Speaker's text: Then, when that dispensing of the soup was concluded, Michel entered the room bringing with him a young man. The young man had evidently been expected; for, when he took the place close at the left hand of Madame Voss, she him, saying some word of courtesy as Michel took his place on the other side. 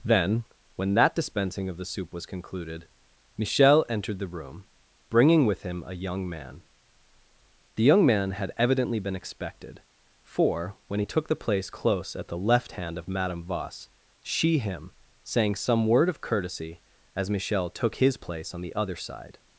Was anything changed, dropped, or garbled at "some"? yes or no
no